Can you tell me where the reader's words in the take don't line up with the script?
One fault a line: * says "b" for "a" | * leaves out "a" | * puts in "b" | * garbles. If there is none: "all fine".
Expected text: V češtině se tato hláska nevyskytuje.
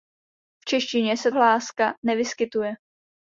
* leaves out "tato"